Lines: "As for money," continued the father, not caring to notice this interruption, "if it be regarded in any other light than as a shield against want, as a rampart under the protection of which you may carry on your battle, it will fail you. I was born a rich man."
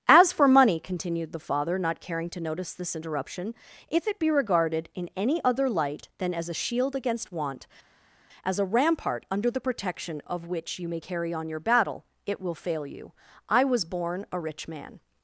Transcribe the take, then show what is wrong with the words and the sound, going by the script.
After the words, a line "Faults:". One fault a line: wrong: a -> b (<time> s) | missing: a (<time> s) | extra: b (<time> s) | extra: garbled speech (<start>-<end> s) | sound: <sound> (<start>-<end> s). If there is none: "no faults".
"As for money," continued the father, not caring to notice this interruption, "if it be regarded in any other light than as a shield against want, as a rampart under the protection of which you may carry on your battle, it will fail you. I was born a rich man."
Faults:
no faults